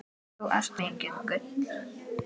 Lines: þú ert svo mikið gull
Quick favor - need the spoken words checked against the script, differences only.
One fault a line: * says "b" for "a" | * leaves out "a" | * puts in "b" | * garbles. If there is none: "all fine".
* leaves out "svo"